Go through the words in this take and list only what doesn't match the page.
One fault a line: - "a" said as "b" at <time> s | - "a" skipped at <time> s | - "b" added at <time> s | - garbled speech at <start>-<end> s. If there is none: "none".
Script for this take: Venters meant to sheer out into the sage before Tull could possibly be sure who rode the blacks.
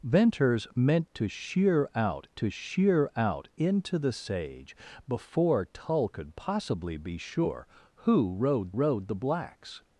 - "to sheer out" added at 2.3 s
- "rode" added at 8.7 s